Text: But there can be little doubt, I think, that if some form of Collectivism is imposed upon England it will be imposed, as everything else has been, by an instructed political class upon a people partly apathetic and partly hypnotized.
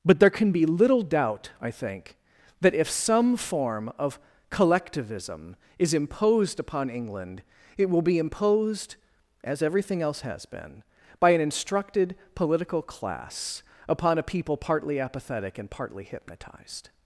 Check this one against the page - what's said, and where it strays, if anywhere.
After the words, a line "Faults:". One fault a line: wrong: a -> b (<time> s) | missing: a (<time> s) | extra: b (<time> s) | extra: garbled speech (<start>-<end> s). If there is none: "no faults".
But there can be little doubt, I think, that if some form of Collectivism is imposed upon England it will be imposed, as everything else has been, by an instructed political class upon a people partly apathetic and partly hypnotized.
Faults:
no faults